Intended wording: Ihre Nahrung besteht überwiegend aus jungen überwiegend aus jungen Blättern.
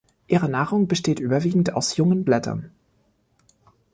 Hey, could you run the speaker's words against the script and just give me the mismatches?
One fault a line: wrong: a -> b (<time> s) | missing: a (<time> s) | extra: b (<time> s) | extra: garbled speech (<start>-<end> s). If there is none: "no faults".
missing: überwiegend aus jungen (2.2 s)